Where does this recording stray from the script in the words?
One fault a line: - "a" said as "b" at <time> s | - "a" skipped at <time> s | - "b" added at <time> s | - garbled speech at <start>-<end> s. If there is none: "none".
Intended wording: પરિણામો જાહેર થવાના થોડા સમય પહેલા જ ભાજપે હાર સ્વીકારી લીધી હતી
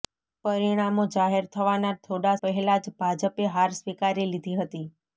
- "સમય" skipped at 2.3 s